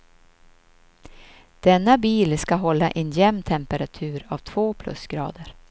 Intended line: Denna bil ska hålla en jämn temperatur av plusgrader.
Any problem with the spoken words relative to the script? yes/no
yes